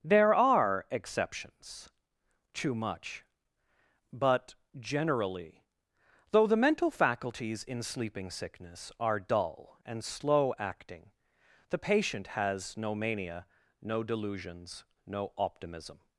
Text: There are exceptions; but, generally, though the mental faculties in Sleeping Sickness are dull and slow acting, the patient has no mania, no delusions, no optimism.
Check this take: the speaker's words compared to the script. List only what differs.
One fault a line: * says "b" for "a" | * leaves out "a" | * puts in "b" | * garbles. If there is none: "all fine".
* puts in "too much"